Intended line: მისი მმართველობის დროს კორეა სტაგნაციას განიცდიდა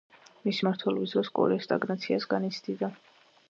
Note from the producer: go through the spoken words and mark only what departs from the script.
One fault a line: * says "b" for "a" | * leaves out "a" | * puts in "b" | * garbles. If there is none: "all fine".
all fine